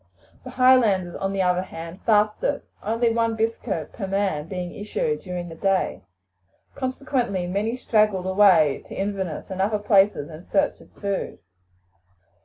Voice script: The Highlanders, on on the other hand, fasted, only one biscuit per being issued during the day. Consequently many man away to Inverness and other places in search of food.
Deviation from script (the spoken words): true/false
true